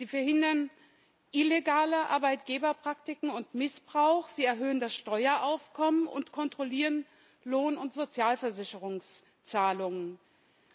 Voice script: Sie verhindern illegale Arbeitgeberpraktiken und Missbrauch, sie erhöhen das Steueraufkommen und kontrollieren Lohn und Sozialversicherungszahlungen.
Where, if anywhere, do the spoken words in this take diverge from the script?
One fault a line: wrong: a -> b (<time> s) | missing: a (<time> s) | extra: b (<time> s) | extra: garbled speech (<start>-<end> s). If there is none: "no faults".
no faults